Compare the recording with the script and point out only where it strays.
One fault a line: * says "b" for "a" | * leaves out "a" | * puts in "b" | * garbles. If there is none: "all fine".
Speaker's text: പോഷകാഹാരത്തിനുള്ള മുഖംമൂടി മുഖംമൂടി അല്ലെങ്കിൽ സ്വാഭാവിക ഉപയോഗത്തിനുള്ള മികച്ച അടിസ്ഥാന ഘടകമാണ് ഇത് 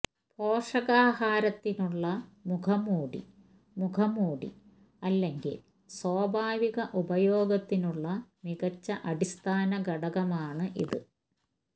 all fine